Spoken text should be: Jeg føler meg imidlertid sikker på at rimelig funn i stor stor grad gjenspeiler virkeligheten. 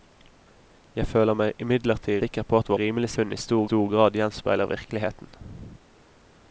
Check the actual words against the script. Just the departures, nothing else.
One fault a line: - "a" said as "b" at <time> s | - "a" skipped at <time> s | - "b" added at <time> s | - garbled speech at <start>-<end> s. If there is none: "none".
none